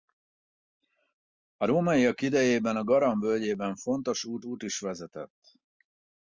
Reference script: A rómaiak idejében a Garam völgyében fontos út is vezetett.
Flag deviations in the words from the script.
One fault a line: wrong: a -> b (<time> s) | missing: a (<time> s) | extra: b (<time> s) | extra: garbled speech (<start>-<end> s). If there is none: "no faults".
extra: út (4.4 s)